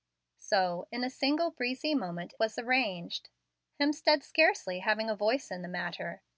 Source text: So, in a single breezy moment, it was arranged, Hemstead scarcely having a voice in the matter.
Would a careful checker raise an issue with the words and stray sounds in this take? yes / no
yes